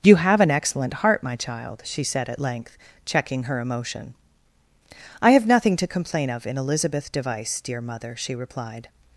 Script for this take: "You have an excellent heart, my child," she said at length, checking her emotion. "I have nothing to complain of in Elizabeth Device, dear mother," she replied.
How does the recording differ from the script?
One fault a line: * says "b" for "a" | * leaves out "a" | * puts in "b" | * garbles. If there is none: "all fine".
all fine